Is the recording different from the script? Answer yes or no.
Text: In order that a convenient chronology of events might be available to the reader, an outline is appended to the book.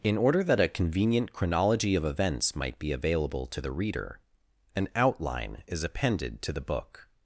no